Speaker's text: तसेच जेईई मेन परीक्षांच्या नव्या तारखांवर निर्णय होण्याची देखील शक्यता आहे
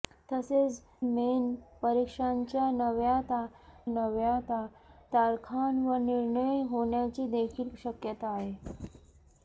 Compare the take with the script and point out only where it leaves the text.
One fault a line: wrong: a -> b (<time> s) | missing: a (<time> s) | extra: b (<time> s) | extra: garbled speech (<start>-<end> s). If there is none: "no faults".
missing: जेईई (0.8 s)
extra: नव्या (3.9 s)